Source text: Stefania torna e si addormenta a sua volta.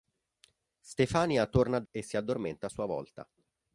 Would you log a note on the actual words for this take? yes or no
no